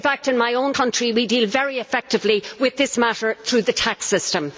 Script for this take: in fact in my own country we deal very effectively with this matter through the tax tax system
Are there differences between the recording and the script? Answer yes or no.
yes